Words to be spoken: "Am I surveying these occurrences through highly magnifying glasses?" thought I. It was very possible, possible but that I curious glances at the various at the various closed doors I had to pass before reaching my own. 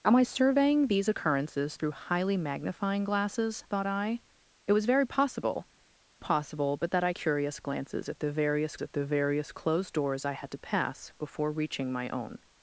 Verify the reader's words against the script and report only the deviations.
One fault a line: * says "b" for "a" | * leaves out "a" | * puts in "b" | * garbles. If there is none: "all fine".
all fine